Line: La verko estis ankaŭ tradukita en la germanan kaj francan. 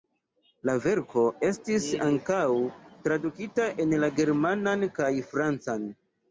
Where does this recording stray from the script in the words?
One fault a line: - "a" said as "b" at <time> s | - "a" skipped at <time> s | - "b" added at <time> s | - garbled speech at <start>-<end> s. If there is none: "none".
none